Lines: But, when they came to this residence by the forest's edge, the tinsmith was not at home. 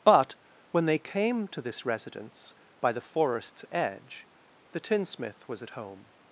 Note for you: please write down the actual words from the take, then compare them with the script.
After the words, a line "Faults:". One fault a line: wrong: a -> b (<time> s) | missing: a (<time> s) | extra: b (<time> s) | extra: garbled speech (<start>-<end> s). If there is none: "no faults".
But, when they came to this residence by the forest's edge, the tinsmith was at home.
Faults:
missing: not (5.6 s)